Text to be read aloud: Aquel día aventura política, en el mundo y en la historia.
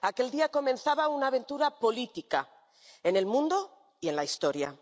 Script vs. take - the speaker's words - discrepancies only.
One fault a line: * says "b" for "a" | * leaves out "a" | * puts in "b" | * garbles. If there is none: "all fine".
* puts in "comenzaba una"